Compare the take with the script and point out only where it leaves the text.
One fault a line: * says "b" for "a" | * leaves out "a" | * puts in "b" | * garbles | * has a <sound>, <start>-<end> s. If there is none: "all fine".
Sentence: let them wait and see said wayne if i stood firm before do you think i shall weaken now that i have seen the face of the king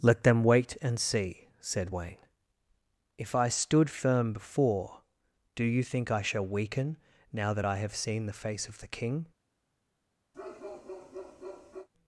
* has a bark, 10.3-11.9 s